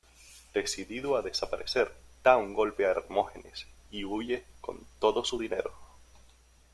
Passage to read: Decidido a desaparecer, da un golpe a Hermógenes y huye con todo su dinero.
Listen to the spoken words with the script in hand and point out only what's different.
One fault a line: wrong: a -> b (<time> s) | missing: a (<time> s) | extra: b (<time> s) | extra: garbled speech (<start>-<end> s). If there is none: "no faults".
no faults